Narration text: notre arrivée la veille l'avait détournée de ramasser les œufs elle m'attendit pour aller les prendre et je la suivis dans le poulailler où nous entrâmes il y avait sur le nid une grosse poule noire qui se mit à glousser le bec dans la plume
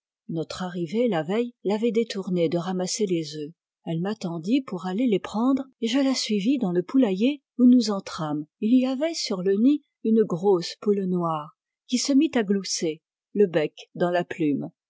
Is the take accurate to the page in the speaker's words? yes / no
yes